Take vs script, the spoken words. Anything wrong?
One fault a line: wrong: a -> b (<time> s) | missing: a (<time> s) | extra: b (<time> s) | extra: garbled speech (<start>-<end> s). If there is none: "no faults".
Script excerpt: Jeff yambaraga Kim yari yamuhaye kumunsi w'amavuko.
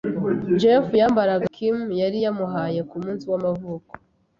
no faults